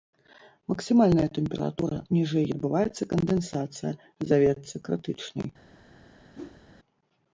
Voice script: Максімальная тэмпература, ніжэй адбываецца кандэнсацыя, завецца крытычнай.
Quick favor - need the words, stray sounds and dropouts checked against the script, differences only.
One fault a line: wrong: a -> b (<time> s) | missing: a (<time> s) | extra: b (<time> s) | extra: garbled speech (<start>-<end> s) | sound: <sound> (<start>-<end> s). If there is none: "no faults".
sound: whoosh (6.3-6.6 s)